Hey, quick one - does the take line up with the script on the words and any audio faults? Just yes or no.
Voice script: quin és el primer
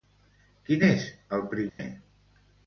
no